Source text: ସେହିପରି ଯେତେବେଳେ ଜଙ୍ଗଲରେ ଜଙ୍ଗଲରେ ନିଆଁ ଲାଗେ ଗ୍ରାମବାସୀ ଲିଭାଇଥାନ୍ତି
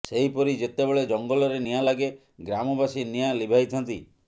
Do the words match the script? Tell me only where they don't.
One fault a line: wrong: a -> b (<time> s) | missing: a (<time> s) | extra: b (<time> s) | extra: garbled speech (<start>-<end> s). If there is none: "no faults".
missing: ଜଙ୍ଗଲରେ (1.6 s)
extra: ନିଆଁ (3.1 s)